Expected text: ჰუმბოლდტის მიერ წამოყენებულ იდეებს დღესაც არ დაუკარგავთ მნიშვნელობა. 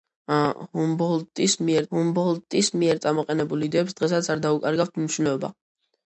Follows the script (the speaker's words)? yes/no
no